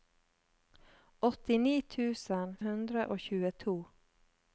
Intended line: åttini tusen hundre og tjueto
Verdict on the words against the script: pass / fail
pass